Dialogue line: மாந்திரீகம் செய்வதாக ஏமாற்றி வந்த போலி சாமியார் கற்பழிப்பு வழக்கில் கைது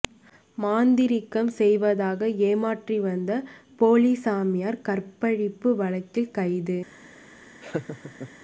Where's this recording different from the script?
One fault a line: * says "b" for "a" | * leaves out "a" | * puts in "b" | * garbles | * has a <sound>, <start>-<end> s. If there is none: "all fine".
* has a laugh, 7.6-8.3 s